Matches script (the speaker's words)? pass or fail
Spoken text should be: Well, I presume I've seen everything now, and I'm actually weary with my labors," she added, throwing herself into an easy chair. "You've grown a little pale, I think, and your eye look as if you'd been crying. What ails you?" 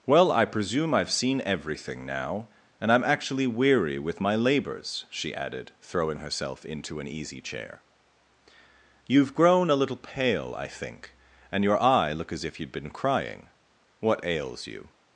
pass